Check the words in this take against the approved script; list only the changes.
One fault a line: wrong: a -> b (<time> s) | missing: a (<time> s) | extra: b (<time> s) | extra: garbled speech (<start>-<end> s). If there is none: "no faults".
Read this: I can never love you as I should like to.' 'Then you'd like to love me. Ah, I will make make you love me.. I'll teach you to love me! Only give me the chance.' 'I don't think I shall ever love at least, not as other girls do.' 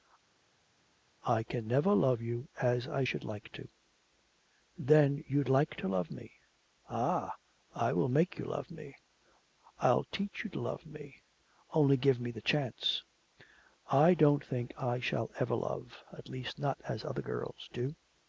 missing: make (8.4 s)